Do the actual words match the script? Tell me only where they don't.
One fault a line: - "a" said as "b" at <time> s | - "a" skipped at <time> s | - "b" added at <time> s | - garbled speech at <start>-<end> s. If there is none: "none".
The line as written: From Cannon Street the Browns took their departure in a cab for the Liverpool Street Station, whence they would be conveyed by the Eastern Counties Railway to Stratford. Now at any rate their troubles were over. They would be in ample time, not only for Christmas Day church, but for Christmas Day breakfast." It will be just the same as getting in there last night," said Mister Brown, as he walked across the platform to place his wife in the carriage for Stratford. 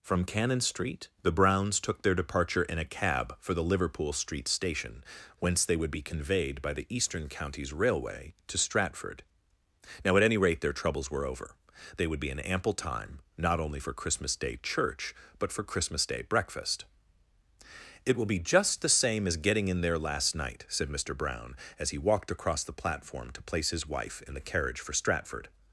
none